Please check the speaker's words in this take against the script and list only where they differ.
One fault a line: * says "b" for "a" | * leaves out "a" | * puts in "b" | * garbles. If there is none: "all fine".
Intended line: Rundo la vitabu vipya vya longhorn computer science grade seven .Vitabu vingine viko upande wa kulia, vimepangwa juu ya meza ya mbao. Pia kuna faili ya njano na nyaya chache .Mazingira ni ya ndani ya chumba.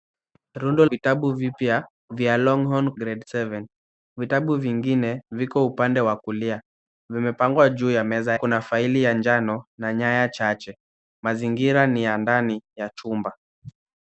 * leaves out "la"
* leaves out "computer science"
* leaves out "ya mbao Pia"